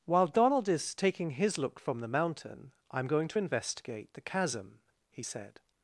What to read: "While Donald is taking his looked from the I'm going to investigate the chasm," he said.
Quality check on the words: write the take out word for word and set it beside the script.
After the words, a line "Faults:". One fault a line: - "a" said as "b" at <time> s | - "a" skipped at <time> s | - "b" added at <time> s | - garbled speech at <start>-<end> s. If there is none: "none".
"While Donald is taking his look from the mountain, I'm going to investigate the chasm," he said.
Faults:
- "looked" said as "look" at 1.6 s
- "mountain" added at 2.1 s